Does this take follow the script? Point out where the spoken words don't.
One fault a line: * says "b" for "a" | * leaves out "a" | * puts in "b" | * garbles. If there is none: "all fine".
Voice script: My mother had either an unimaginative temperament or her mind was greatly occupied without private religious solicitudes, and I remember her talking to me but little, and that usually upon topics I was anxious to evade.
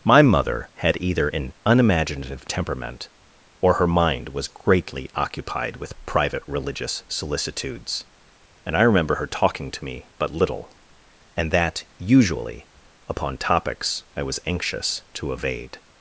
* says "with" for "without"